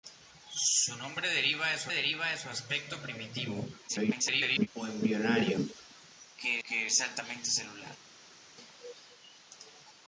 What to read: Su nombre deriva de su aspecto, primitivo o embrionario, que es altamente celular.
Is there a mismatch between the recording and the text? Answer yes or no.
yes